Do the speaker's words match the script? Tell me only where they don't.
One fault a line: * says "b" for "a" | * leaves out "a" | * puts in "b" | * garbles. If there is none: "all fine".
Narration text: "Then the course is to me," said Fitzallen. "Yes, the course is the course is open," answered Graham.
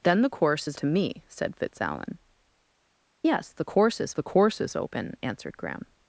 all fine